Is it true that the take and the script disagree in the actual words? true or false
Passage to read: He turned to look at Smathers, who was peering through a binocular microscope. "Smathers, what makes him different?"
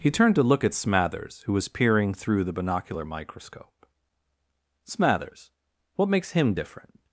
true